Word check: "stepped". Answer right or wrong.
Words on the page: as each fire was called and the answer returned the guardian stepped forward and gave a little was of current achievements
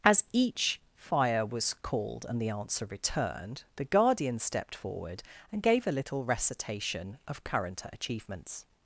right